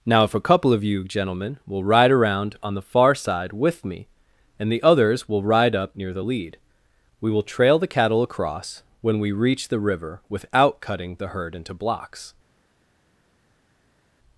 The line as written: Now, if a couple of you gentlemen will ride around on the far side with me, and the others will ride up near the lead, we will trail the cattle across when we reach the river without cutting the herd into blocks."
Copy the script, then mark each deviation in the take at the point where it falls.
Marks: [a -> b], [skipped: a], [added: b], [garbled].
Now, if a couple of you gentlemen will ride around on the far side with me, and the others will ride up near the lead, we will trail the cattle across when we reach the river without cutting the herd into blocks."